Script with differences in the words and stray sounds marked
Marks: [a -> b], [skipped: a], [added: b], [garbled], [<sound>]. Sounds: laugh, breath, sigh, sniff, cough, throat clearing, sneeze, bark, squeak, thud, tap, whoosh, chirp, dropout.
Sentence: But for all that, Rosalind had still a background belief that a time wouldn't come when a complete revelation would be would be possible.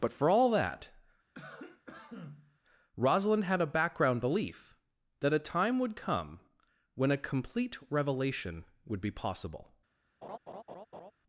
But for all that, [cough] Rosalind had [skipped: still] a background belief that a time [wouldn't -> would] come when a complete revelation would be [skipped: would be] possible. [laugh]